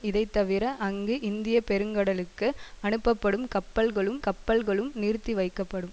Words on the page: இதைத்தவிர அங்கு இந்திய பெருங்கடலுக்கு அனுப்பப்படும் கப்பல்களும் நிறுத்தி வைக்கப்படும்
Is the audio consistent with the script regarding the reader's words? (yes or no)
no